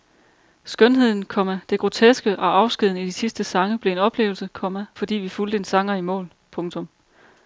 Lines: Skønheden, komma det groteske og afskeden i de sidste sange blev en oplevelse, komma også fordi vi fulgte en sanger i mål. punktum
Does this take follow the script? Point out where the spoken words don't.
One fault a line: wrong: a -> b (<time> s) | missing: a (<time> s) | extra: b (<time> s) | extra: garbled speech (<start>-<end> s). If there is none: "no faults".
missing: også (4.8 s)